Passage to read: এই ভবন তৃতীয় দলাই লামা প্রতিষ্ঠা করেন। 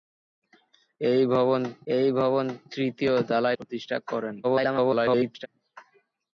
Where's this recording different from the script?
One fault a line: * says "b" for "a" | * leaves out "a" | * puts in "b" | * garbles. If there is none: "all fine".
* puts in "এই ভবন"
* leaves out "লামা"
* garbles